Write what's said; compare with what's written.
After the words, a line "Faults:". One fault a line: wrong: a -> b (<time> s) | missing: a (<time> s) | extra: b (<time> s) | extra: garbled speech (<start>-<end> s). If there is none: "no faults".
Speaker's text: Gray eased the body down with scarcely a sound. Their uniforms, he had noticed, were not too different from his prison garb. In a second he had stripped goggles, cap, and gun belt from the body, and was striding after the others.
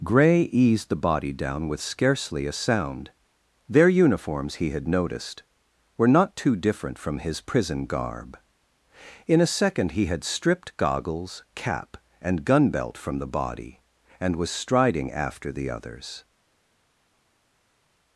Gray eased the body down with scarcely a sound. Their uniforms, he had noticed, were not too different from his prison garb. In a second he had stripped goggles, cap, and gun belt from the body, and was striding after the others.
Faults:
no faults